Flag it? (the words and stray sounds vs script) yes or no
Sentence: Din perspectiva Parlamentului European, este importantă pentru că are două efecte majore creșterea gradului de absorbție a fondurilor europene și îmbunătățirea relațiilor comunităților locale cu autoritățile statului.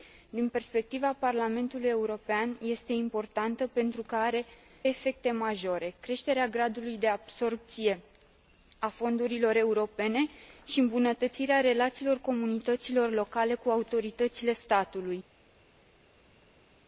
yes